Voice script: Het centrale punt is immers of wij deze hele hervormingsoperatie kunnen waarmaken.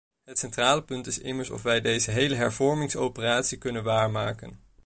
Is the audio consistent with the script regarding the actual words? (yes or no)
yes